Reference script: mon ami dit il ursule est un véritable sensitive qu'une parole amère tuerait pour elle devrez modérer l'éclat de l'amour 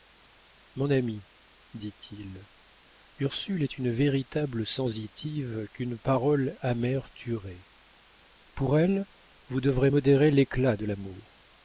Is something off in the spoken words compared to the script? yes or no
yes